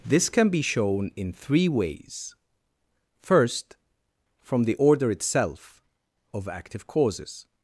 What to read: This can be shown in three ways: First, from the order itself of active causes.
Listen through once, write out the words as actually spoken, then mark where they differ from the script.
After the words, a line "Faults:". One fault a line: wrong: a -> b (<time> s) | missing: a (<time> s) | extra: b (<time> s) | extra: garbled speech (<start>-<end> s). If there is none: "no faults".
This can be shown in three ways: First, from the order itself of active causes.
Faults:
no faults